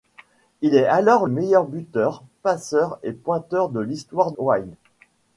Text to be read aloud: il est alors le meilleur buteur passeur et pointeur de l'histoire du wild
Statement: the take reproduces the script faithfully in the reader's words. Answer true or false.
false